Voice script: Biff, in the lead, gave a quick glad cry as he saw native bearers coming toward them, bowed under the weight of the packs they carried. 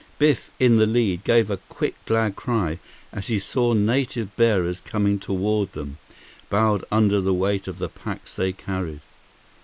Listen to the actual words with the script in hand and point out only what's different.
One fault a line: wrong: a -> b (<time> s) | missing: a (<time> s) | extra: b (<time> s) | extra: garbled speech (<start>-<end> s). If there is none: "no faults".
no faults